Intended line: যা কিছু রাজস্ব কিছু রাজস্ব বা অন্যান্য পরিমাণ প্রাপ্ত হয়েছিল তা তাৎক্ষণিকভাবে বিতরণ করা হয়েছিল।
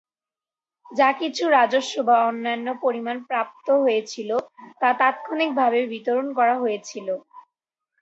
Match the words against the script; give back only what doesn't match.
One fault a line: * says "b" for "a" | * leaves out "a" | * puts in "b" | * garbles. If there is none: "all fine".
* leaves out "কিছু রাজস্ব"